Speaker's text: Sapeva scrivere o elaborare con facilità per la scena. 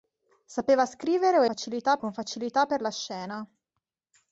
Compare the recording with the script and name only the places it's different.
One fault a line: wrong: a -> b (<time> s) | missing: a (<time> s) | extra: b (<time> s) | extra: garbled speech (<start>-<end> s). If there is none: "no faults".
wrong: elaborare -> facilità (1.4 s)